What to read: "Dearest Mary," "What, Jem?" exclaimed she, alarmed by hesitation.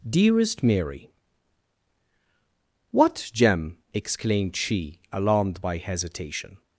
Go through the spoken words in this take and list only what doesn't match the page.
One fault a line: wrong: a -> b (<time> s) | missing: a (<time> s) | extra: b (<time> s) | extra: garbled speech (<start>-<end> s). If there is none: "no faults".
no faults